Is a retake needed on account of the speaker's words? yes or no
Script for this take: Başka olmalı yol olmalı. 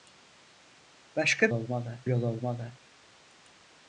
no